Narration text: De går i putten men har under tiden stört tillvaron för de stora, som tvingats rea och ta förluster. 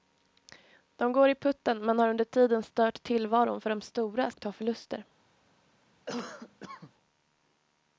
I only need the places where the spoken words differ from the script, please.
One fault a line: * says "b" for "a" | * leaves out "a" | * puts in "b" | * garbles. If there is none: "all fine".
* leaves out "som tvingats rea"